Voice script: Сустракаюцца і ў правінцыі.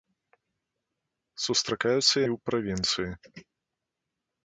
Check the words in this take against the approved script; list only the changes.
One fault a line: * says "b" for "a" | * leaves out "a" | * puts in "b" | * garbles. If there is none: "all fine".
all fine